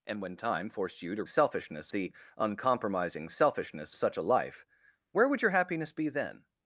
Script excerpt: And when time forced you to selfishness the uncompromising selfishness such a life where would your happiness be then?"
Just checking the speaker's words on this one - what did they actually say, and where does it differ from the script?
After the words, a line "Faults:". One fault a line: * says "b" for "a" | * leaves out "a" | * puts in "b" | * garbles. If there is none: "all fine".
And when time forced you to selfishness the uncompromising selfishness such a life where would your happiness be then?"
Faults:
all fine